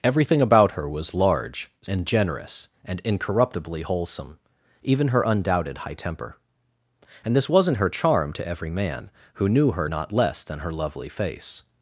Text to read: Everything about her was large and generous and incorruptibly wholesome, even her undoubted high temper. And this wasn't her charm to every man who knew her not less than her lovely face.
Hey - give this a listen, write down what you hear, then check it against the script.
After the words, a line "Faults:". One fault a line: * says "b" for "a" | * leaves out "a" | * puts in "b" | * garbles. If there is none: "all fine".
Everything about her was large and generous and incorruptibly wholesome, even her undoubted high temper. And this wasn't her charm to every man who knew her not less than her lovely face.
Faults:
all fine